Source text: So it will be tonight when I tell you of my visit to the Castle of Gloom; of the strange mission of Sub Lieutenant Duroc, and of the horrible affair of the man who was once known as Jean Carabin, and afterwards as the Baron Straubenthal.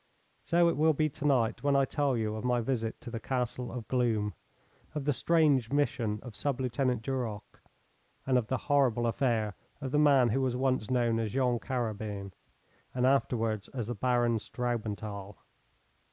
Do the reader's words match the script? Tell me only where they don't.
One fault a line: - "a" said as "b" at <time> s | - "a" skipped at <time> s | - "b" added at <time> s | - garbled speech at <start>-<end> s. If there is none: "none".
none